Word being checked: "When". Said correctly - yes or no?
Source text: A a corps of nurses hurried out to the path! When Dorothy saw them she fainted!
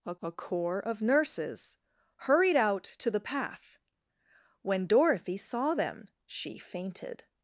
yes